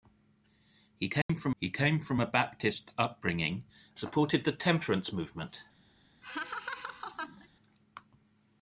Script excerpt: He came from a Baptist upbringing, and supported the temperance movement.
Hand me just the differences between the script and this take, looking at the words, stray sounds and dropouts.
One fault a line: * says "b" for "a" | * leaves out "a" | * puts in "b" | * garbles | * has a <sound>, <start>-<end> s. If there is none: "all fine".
* has a dropout, 1.2-1.3 s
* puts in "he came from"
* leaves out "and"
* has a laugh, 6.2-7.5 s